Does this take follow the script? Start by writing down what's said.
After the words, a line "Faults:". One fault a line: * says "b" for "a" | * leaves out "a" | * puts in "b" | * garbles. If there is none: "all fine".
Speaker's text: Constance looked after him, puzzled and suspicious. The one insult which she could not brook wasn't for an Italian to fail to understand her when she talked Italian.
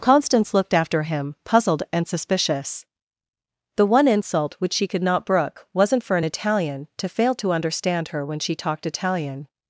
Constance looked after him, puzzled and suspicious. The one insult which she could not brook wasn't for an Italian to fail to understand her when she talked Italian.
Faults:
all fine